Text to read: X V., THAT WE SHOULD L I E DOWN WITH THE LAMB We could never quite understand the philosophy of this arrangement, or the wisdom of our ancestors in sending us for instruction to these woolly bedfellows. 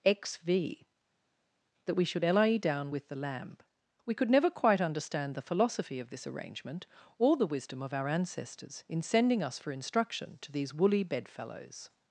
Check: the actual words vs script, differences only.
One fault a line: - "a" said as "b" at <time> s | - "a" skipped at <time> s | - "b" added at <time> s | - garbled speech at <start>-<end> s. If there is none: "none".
none